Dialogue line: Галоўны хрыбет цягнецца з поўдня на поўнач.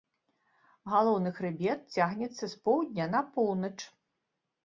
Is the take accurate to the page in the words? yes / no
yes